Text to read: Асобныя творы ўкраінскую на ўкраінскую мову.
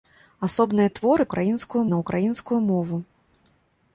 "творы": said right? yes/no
yes